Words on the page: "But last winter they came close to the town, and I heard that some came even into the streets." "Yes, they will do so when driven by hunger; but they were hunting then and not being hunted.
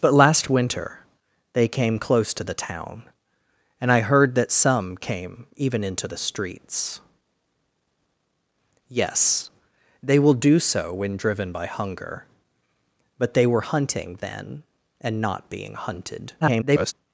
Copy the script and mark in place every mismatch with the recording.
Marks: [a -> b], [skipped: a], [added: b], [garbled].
"But last winter they came close to the town, and I heard that some came even into the streets." "Yes, they will do so when driven by hunger; but they were hunting then and not being hunted. [garbled]